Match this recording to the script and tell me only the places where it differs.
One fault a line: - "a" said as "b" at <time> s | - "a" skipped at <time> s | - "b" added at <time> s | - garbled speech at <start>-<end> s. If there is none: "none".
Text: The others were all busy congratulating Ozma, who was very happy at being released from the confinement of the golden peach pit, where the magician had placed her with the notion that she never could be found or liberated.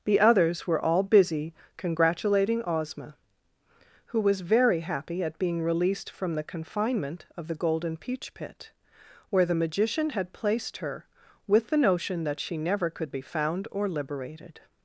none